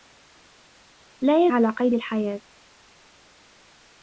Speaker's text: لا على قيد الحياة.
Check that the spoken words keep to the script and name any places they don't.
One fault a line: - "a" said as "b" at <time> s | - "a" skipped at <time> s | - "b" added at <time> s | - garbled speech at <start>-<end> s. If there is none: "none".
none